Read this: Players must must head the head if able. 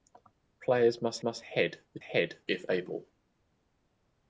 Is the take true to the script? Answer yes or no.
yes